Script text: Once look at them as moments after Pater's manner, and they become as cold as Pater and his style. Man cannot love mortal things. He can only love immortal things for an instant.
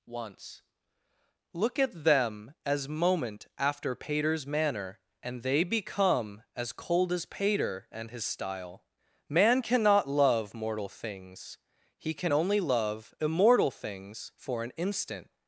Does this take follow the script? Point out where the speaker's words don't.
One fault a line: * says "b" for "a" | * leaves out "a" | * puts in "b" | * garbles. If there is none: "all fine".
* says "moment" for "moments"